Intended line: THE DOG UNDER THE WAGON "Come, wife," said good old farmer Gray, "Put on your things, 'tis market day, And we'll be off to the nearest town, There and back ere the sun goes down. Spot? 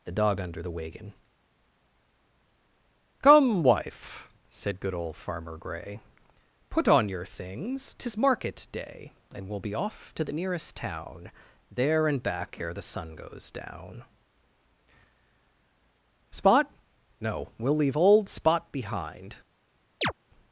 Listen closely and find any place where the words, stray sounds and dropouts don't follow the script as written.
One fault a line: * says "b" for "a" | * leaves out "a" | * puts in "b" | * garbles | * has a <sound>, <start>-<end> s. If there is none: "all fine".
* puts in "No we'll leave old Spot behind"
* has a chirp, 20.0-20.1 s